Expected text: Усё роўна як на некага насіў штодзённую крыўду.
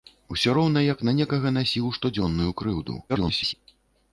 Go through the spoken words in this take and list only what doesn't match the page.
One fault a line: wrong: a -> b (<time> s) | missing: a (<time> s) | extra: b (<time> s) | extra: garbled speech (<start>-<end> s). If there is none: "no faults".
extra: garbled speech (3.1-3.5 s)